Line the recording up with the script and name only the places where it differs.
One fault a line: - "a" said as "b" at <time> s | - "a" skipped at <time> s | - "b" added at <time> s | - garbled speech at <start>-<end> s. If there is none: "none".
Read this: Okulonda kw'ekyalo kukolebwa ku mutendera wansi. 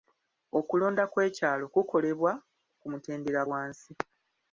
none